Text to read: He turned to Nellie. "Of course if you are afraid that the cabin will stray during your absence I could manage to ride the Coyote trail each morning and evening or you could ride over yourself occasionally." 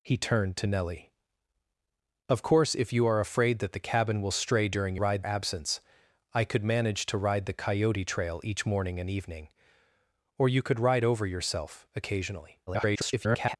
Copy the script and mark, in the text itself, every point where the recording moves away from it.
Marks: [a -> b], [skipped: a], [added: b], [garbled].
He turned to Nellie. "Of course if you are afraid that the cabin will stray during [your -> ride] absence I could manage to ride the Coyote trail each morning and evening or you could ride over yourself occasionally." [garbled]